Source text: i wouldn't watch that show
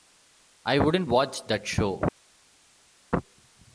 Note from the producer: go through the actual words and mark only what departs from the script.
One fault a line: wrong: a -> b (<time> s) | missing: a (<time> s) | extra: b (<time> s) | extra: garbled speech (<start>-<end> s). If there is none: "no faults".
no faults